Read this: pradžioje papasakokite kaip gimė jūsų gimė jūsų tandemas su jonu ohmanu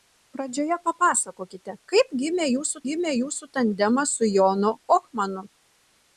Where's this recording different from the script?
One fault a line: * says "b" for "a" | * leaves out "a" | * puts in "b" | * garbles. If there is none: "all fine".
all fine